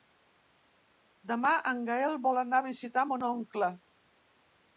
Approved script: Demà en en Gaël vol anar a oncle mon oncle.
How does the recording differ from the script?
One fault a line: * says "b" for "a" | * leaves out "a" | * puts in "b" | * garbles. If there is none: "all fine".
* leaves out "en"
* says "visitar" for "oncle"